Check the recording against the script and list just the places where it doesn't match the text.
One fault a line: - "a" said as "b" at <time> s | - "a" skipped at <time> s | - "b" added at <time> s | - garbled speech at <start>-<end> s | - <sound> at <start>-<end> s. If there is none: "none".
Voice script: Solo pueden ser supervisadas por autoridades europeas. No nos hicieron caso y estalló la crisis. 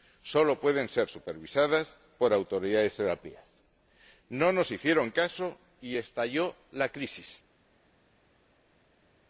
none